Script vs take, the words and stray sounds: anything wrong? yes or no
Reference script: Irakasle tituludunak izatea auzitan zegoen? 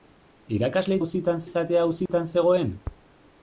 yes